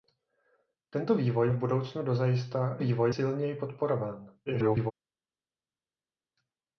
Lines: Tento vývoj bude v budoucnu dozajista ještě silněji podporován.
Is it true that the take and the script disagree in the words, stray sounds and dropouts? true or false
true